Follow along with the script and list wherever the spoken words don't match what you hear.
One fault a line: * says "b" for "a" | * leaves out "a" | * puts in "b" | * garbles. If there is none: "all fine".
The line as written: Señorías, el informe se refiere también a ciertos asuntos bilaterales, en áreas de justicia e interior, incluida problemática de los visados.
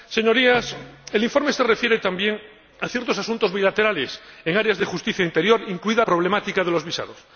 all fine